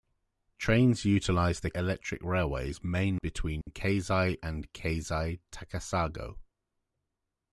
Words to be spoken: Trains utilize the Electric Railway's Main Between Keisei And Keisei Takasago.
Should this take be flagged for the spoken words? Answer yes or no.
no